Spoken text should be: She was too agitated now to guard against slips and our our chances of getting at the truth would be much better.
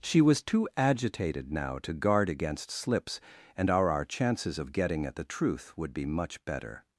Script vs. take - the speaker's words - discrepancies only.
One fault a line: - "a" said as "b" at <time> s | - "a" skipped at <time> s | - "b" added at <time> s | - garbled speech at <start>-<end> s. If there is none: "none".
none